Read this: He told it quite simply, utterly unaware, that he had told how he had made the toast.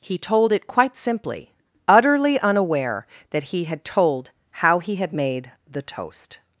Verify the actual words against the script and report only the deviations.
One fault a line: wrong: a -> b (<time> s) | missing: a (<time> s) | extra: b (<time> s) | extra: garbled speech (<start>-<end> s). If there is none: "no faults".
no faults